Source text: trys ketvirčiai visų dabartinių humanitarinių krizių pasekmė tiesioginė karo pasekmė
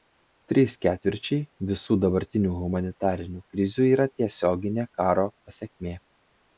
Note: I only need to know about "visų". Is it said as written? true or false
true